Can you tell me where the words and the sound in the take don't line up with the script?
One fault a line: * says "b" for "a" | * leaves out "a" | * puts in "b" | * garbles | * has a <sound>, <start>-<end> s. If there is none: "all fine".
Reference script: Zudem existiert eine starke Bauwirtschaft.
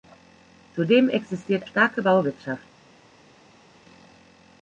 * leaves out "eine"